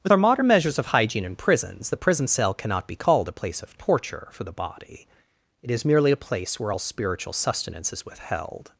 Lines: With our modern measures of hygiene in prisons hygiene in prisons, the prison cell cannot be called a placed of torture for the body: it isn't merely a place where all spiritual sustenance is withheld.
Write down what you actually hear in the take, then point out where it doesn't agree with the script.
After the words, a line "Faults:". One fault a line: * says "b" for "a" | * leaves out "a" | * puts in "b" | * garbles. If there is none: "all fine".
With our modern measures of hygiene in prisons, the prison cell cannot be called a place of torture for the body: it is merely a place where all spiritual sustenance is withheld.
Faults:
* leaves out "hygiene in prisons"
* says "place" for "placed"
* says "is" for "isn't"